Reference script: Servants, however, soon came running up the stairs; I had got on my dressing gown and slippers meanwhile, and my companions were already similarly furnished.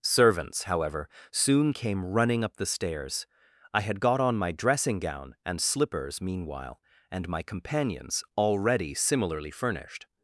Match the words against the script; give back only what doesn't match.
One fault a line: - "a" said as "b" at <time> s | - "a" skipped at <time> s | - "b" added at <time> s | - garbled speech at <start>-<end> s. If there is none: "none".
- "were" skipped at 8.2 s